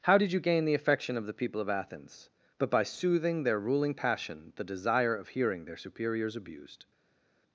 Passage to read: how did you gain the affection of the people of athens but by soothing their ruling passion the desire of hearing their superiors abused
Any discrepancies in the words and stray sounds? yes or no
no